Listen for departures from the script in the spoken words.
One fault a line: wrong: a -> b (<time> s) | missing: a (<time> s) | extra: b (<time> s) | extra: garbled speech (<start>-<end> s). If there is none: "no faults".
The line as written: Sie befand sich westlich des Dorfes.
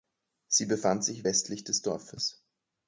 no faults